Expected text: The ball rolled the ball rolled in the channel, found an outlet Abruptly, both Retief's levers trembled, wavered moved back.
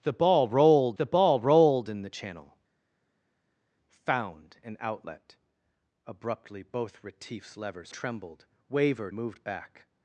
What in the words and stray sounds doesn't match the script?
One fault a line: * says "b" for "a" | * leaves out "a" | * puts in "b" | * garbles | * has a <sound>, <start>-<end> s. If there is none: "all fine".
all fine